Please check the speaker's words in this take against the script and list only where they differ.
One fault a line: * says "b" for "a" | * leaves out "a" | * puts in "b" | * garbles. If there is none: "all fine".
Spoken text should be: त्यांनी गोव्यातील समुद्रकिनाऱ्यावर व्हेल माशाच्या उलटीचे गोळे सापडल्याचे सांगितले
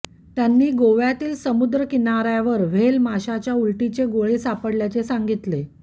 all fine